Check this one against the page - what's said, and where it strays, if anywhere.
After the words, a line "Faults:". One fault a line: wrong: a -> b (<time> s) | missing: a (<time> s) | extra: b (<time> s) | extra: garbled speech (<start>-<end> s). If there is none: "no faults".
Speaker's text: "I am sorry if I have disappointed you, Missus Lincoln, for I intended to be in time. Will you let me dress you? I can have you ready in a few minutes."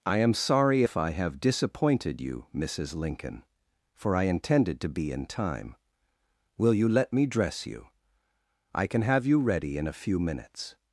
"I am sorry if I have disappointed you, Missus Lincoln, for I intended to be in time. Will you let me dress you? I can have you ready in a few minutes."
Faults:
no faults